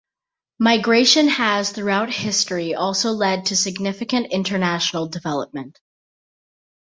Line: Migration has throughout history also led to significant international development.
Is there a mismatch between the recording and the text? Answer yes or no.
no